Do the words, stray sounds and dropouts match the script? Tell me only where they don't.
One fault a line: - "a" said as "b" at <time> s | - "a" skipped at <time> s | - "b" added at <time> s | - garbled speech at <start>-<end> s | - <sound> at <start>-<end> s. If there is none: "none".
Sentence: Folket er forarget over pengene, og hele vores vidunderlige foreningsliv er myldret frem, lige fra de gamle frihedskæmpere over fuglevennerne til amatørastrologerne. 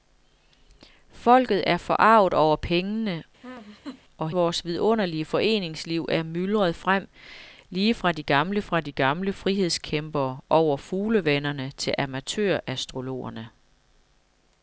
- laugh at 3.4-4.0 s
- "hele" skipped at 4.3 s
- "fra de gamle" added at 8.6 s